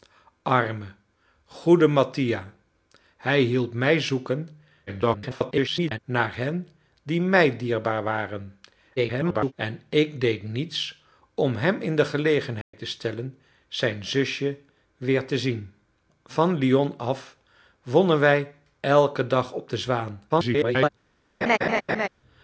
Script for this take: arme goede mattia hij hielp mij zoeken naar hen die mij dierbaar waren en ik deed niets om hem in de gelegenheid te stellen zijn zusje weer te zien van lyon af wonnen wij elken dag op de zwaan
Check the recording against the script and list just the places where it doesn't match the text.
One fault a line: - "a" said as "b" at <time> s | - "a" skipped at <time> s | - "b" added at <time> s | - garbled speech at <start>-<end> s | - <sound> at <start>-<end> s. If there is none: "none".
- garbled speech at 4.9-6.0 s
- garbled speech at 9.0-9.5 s
- dropout at 12.6-12.7 s
- garbled speech at 20.3-20.9 s
- laugh at 21.4-22.1 s